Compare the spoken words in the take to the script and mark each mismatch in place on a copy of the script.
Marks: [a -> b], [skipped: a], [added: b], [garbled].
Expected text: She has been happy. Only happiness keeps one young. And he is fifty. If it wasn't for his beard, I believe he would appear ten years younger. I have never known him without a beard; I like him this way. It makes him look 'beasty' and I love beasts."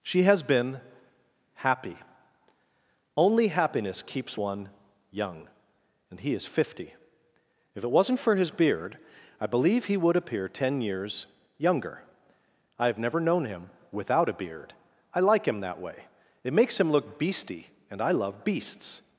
She has been happy. Only happiness keeps one young. And he is fifty. If it wasn't for his beard, I believe he would appear ten years younger. I have never known him without a beard; I like him [this -> that] way. It makes him look 'beasty' and I love beasts."